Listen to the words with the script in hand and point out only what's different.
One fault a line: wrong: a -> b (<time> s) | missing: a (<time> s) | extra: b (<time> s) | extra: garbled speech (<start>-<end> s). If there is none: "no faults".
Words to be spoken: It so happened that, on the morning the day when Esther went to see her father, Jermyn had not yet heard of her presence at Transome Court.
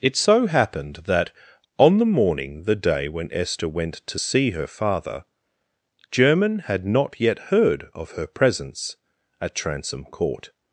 no faults